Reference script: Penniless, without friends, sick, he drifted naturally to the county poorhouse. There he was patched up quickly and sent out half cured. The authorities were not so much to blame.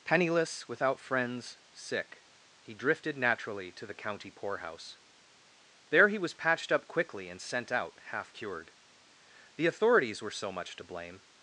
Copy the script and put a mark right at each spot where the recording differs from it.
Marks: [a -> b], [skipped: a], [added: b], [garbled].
Penniless, without friends, sick, he drifted naturally to the county poorhouse. There he was patched up quickly and sent out half cured. The authorities were [skipped: not] so much to blame.